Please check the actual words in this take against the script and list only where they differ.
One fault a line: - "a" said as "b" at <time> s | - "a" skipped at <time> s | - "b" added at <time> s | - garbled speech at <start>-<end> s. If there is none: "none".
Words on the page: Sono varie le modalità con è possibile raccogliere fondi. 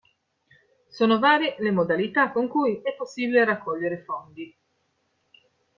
- "cui" added at 2.5 s